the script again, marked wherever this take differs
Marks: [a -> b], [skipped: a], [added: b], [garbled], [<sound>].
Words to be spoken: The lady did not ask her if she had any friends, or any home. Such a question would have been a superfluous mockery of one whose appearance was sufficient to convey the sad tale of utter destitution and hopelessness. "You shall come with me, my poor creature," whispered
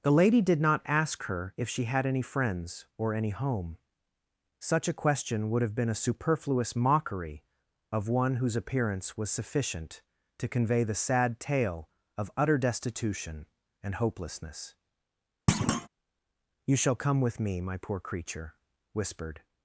The lady did not ask her if she had any friends, or any home. Such a question would have been a superfluous mockery of one whose appearance was sufficient to convey the sad tale of utter destitution and hopelessness. [thud] "You shall come with me, my poor creature," whispered